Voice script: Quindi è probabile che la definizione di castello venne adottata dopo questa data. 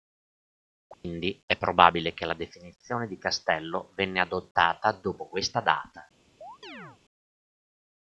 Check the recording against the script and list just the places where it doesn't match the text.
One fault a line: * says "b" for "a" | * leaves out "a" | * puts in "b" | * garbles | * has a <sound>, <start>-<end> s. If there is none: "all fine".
* has a dropout, 0.9-1.0 s
* has a chirp, 6.4-7.0 s